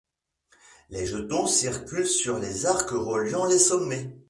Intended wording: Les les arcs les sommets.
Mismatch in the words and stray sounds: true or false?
true